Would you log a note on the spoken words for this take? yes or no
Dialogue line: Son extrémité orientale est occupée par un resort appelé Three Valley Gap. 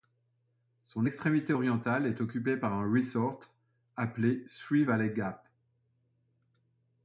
no